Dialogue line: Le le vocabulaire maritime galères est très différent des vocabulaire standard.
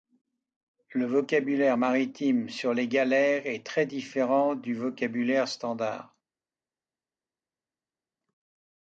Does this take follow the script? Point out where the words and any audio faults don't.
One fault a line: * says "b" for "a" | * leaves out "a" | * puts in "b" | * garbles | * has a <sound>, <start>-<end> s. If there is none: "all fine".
* leaves out "le"
* puts in "sur les"
* says "du" for "des"